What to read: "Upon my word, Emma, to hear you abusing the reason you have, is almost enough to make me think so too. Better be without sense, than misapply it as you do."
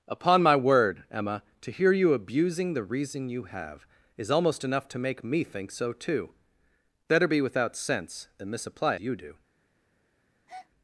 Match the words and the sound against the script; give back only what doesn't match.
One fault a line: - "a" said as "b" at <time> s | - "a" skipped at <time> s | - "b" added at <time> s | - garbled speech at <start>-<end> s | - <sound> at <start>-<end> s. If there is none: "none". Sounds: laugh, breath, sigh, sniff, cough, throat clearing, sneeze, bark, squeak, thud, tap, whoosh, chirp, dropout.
- "it as" skipped at 8.9 s
- breath at 10.5-10.7 s